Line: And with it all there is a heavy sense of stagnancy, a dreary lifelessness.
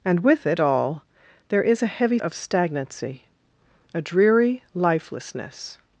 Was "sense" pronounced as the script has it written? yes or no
no